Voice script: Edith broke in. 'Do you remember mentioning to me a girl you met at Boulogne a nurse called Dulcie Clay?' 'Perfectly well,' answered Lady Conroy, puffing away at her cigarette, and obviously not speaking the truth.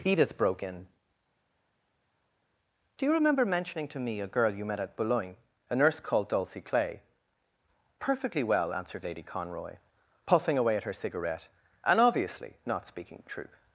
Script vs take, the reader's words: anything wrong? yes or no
no